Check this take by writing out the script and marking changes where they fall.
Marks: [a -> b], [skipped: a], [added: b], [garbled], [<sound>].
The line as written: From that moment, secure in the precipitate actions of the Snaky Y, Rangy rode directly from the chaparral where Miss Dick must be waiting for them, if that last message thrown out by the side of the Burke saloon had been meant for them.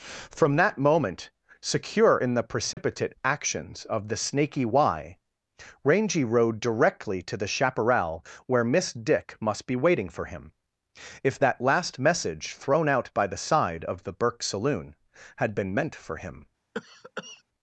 From that moment, secure in the precipitate [dropout] actions of the Snaky Y, Rangy rode directly [from -> to] the chaparral where Miss Dick must be waiting for [them, -> him] if that last message thrown out by the side of the Burke saloon had been meant for [them. -> him] [cough]